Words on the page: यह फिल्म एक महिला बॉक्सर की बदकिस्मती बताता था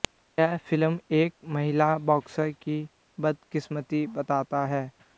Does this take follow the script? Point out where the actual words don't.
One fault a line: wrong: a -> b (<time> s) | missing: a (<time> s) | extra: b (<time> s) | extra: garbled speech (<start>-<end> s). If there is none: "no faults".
wrong: था -> है (4.7 s)